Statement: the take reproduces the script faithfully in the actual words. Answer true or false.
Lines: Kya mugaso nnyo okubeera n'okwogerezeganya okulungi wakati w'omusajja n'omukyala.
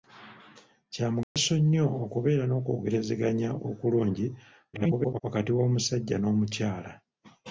false